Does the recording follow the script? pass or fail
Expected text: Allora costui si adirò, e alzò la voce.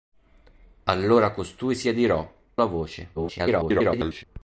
fail